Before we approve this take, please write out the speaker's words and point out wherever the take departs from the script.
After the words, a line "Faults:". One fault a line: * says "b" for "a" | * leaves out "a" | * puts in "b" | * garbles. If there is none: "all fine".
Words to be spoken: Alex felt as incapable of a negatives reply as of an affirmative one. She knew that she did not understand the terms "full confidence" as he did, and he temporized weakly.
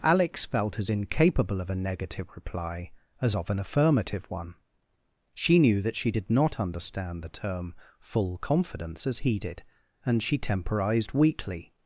Alex felt as incapable of a negative reply as of an affirmative one. She knew that she did not understand the term "full confidence" as he did, and she temporized weakly.
Faults:
* says "negative" for "negatives"
* says "term" for "terms"
* says "she" for "he"